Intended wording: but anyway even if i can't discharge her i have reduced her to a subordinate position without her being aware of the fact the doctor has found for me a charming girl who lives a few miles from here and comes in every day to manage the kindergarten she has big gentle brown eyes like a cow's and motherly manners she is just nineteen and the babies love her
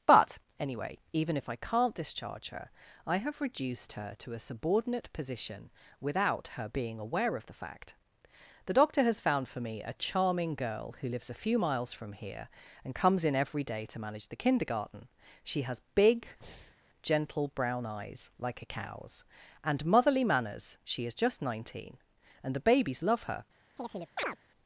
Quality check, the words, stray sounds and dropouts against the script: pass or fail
fail